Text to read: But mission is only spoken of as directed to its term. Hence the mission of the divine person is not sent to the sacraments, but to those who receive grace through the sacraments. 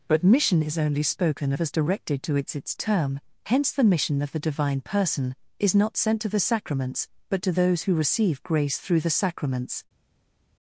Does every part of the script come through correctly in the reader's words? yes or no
no